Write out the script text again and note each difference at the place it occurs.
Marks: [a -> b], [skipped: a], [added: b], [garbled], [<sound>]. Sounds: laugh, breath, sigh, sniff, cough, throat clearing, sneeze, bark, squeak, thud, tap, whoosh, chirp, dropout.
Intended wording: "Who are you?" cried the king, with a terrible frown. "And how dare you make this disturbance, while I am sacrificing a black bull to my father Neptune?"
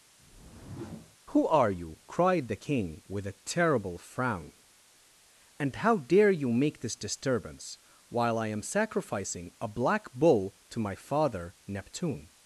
[whoosh] "Who are you?" cried the king, with a terrible frown. "And how dare you make this disturbance, while I am sacrificing a black bull to my father Neptune?"